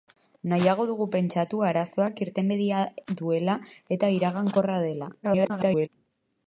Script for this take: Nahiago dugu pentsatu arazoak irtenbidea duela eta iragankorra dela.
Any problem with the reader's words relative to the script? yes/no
yes